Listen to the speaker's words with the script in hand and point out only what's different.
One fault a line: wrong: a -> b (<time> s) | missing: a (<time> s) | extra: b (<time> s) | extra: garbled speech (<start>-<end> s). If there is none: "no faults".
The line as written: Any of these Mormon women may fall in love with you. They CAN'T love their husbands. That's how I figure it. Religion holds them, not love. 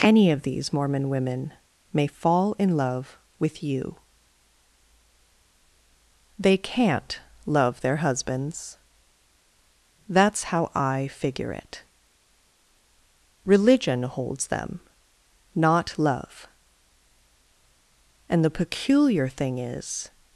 extra: And the peculiar thing is (18.3 s)